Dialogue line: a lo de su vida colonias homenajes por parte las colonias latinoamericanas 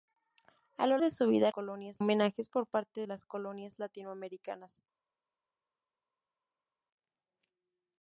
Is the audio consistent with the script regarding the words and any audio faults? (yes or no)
yes